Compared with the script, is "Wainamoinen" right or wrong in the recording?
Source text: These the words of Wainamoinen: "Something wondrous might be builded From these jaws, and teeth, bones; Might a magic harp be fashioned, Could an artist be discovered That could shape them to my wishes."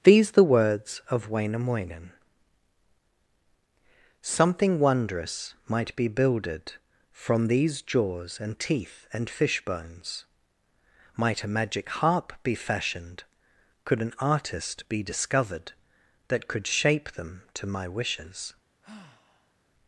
right